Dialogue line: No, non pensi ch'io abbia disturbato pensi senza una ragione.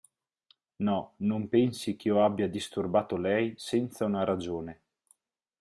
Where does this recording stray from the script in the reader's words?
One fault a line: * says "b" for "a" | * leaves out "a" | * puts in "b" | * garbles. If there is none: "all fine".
* says "lei" for "pensi"